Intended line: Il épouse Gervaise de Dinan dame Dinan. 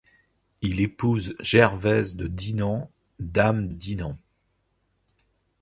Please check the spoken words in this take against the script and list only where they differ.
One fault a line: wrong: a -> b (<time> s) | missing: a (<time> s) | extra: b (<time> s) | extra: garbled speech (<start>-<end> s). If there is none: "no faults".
no faults